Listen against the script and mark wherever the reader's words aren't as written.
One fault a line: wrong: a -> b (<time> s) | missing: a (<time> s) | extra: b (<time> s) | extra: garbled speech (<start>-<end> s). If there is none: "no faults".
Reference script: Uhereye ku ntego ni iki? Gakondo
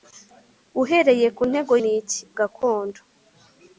no faults